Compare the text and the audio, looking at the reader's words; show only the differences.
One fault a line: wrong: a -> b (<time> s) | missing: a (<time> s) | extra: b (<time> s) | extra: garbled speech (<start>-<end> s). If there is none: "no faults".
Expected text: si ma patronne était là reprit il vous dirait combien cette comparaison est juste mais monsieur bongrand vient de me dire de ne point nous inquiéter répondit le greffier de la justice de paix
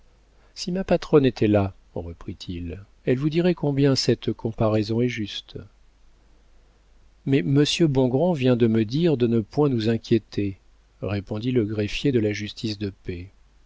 extra: elle (3.0 s)